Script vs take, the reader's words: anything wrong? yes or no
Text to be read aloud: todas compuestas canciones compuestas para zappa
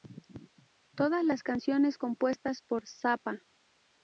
yes